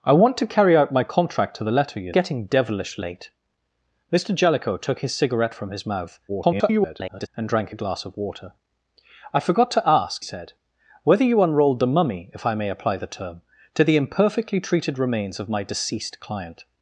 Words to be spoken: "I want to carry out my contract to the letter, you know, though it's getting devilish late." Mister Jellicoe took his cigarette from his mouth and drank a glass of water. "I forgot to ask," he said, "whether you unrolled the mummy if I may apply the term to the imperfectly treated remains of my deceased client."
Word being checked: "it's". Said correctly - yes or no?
no